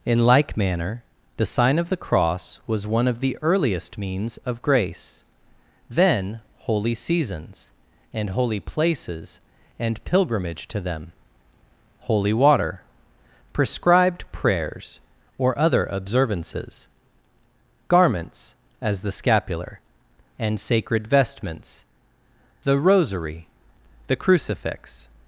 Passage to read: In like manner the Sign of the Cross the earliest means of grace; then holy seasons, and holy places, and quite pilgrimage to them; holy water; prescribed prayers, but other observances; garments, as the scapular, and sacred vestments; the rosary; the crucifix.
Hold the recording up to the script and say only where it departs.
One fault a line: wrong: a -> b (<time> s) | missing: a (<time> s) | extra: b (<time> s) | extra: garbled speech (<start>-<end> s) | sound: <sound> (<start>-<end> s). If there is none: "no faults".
extra: was one of (2.6 s)
missing: quite (10.0 s)
wrong: but -> or (15.4 s)